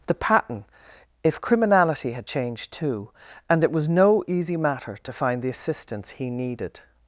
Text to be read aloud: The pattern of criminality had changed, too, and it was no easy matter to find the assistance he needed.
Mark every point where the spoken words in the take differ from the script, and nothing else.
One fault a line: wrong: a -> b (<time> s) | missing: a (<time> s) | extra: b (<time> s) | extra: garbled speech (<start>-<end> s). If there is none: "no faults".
wrong: of -> if (1.2 s)